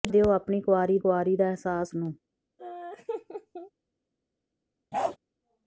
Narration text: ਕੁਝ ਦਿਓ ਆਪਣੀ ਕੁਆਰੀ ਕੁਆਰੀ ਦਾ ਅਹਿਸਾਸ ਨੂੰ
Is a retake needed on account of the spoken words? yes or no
no